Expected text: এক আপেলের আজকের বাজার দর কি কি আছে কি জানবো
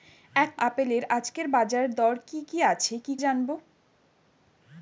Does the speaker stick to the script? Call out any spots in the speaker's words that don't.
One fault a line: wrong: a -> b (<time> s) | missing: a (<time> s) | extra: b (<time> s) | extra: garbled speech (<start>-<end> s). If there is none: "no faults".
no faults